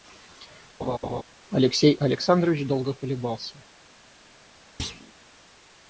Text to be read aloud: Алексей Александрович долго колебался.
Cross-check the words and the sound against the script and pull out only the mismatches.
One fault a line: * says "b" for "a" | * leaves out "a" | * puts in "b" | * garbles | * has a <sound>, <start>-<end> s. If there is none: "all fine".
* has a laugh, 0.8-1.2 s
* has a thud, 4.8-5.1 s